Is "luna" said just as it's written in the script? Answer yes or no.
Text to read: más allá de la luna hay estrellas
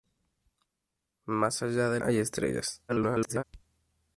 no